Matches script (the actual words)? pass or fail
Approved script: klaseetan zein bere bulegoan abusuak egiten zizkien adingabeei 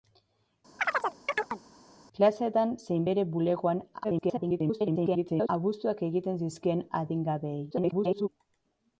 fail